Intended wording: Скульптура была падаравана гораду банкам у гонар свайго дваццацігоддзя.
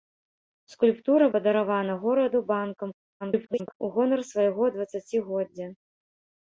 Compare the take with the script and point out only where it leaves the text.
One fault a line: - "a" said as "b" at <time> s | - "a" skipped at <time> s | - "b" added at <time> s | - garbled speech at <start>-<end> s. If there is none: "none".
- "была" skipped at 1.3 s
- garbled speech at 3.2-3.8 s